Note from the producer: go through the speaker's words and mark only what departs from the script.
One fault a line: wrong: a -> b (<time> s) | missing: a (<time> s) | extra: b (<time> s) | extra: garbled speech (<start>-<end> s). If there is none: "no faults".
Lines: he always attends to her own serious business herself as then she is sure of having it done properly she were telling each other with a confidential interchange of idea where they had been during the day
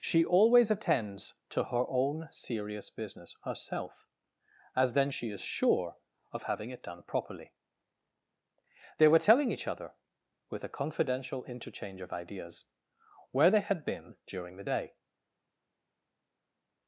wrong: he -> she (0.0 s)
wrong: she -> they (9.0 s)
wrong: idea -> ideas (12.1 s)